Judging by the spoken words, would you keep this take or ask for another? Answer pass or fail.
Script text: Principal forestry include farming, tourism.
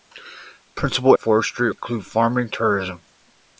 pass